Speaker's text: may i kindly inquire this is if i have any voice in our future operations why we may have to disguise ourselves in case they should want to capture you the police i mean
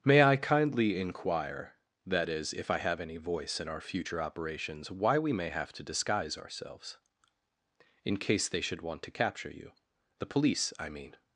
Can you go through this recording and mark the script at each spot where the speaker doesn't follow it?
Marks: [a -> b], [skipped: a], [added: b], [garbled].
may i kindly inquire [this -> that] is if i have any voice in our future operations why we may have to disguise ourselves in case they should want to capture you the police i mean